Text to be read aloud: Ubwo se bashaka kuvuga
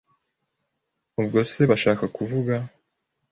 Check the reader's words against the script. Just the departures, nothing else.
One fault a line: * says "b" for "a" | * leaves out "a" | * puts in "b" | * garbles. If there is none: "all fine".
all fine